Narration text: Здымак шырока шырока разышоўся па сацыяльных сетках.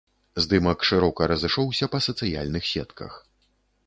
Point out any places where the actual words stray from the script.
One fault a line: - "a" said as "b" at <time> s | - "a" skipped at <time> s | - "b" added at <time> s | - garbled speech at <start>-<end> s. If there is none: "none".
- "шырока" skipped at 1.3 s